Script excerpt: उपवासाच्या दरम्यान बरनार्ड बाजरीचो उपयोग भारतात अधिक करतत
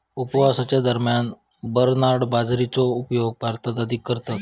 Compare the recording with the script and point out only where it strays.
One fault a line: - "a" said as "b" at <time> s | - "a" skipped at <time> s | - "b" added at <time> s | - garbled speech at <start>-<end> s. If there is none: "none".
none